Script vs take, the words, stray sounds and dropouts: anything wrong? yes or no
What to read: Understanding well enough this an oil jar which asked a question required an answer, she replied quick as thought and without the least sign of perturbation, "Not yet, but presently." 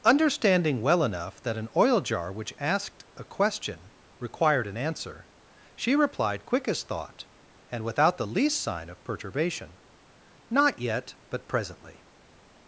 yes